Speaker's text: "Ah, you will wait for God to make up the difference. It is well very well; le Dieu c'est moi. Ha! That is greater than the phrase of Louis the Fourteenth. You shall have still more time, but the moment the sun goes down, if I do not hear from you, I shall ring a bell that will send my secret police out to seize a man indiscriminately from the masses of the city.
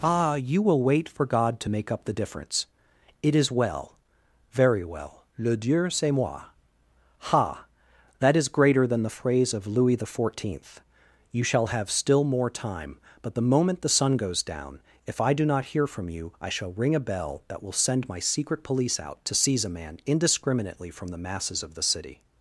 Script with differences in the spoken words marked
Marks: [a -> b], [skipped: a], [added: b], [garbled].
"Ah, you will wait for God to make up the difference. It is well very well; le Dieu c'est moi. Ha! That is greater than the phrase of Louis the Fourteenth. You shall have still more time, but the moment the sun goes down, if I do not hear from you, I shall ring a bell that will send my secret police out to seize a man indiscriminately from the masses of the city.